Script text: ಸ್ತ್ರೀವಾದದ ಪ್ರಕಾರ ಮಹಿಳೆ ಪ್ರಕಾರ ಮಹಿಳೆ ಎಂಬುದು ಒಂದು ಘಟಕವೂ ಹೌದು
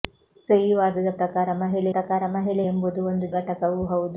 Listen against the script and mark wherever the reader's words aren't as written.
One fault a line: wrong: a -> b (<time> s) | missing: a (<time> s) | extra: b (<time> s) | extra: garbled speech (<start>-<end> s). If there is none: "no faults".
no faults